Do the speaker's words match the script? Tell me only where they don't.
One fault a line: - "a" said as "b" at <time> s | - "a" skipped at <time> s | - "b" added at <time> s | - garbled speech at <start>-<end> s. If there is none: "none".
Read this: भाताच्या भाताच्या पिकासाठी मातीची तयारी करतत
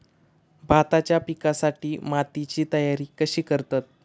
- "भाताच्या" skipped at 1.2 s
- "कशी" added at 3.2 s